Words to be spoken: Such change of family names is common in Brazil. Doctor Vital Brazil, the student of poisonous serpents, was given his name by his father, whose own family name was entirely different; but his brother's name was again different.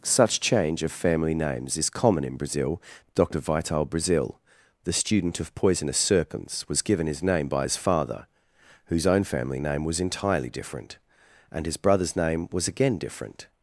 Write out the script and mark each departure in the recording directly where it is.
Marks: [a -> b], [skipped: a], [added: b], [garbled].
Such change of family names is common in Brazil. Doctor Vital Brazil, the student of poisonous serpents, was given his name by his father, whose own family name was entirely different; [but -> and] his brother's name was again different.